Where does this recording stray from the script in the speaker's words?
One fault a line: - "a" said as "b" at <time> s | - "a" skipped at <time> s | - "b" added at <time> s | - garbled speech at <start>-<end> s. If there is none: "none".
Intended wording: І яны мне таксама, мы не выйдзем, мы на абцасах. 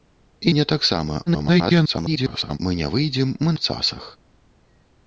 - "яны" skipped at 0.5 s
- garbled speech at 1.3-2.6 s
- "на" skipped at 3.6 s